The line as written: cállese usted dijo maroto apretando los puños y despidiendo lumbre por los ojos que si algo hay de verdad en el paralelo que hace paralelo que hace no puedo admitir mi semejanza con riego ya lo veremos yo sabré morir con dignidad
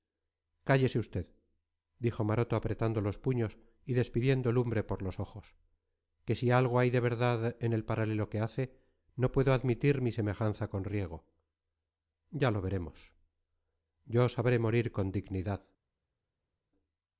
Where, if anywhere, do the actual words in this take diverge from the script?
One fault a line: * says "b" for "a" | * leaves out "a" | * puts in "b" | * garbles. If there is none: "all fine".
* leaves out "paralelo que hace"